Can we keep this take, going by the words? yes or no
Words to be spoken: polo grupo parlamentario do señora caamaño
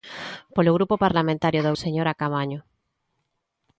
yes